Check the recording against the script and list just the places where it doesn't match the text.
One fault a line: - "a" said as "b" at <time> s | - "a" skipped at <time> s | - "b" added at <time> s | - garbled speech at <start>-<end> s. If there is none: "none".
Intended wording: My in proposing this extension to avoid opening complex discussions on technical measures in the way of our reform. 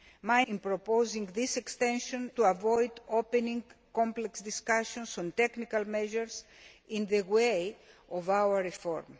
none